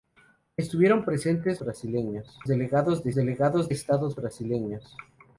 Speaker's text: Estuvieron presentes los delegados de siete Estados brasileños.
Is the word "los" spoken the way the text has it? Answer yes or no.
no